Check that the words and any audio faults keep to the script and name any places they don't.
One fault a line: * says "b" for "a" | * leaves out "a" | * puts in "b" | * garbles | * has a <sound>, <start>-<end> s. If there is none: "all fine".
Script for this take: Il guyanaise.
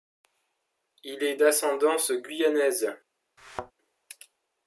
* puts in "est d'ascendance"
* has a thud, 3.4-3.7 s